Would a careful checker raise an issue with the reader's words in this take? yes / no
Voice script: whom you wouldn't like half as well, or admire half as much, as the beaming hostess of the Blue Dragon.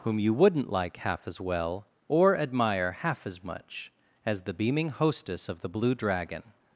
no